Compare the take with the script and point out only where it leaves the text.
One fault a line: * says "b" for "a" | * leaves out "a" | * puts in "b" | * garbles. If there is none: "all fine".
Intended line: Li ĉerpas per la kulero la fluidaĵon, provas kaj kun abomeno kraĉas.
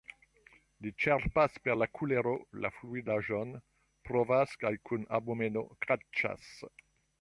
all fine